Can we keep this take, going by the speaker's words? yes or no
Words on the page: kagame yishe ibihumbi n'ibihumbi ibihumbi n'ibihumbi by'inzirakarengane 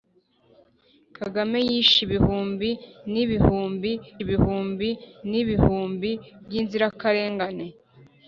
yes